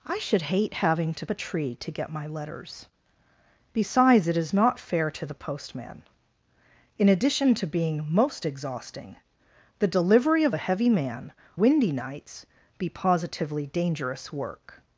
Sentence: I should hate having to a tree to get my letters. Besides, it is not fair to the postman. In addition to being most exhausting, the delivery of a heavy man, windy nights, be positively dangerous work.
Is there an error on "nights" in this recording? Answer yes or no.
no